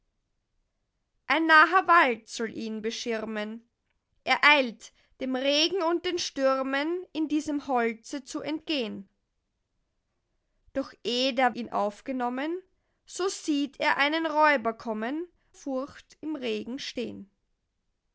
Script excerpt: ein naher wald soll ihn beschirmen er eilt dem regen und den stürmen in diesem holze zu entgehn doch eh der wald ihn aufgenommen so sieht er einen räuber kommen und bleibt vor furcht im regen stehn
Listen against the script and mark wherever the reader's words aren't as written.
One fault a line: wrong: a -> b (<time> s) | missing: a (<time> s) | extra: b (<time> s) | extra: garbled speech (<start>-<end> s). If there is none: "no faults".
missing: wald (11.6 s)
missing: und bleibt vor (15.3 s)